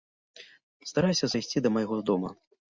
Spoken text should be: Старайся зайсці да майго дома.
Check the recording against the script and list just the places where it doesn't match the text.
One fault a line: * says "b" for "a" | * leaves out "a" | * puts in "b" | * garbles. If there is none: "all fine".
all fine